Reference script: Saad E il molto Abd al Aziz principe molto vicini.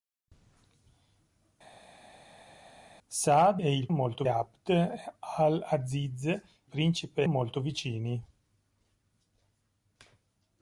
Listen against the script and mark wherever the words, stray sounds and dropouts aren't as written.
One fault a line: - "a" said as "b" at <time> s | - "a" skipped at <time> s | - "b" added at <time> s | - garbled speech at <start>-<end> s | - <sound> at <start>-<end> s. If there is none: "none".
none